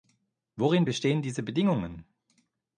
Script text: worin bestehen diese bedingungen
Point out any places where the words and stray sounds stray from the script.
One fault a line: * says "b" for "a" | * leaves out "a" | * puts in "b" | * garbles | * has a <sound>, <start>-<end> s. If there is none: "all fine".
all fine